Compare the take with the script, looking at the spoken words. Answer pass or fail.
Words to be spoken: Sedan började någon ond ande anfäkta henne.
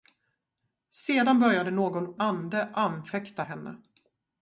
fail